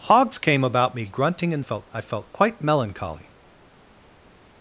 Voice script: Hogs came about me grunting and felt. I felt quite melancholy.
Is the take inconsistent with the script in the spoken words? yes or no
no